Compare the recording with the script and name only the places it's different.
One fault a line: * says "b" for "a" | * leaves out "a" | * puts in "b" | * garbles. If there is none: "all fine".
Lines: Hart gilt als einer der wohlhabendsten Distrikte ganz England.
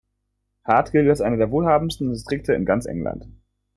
* puts in "in"